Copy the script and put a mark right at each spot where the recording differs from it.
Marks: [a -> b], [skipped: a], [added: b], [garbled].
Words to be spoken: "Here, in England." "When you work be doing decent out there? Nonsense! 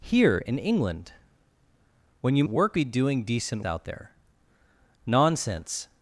"Here, in England." "When you work be doing decent out there? Nonsense!